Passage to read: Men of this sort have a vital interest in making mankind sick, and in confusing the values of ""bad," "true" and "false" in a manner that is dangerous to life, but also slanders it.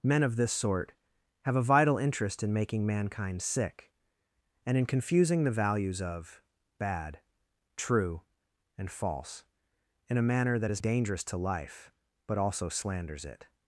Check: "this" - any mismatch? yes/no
no